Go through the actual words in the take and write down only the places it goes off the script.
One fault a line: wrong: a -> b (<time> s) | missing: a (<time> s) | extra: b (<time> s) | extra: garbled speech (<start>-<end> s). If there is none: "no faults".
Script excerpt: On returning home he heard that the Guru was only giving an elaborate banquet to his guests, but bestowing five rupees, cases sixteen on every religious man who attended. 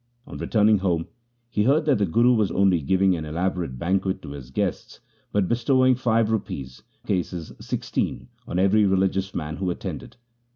no faults